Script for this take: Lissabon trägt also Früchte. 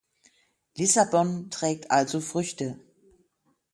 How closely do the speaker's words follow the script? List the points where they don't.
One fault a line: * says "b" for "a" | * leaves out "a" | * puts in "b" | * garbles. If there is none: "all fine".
all fine